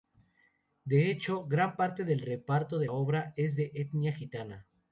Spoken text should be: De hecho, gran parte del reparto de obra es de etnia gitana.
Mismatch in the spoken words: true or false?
false